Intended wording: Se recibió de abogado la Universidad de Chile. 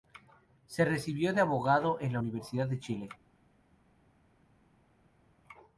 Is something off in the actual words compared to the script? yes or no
yes